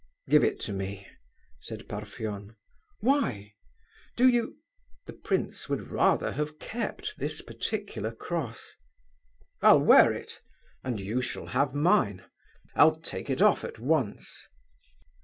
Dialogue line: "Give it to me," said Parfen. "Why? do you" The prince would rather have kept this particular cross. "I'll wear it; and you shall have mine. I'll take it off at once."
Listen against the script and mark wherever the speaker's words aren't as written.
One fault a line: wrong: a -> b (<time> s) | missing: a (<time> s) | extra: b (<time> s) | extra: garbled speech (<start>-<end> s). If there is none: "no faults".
no faults